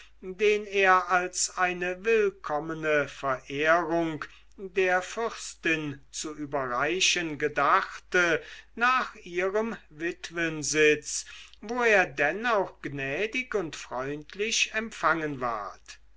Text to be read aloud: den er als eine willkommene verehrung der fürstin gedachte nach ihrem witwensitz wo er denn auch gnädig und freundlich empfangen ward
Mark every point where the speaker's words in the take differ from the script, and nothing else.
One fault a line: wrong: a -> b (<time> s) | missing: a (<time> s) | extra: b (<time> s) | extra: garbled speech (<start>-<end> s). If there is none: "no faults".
extra: zu überreichen (6.1 s)